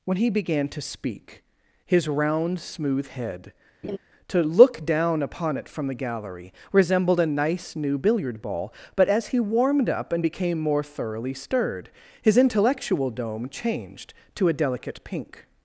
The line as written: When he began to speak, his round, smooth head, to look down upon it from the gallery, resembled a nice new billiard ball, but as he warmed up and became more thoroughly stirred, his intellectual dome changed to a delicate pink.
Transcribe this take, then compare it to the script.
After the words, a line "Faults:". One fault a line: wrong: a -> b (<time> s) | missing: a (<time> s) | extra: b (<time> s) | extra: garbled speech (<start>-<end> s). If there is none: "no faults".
When he began to speak, his round, smooth head, to look down upon it from the gallery, resembled a nice new billiard ball, but as he warmed up and became more thoroughly stirred, his intellectual dome changed to a delicate pink.
Faults:
no faults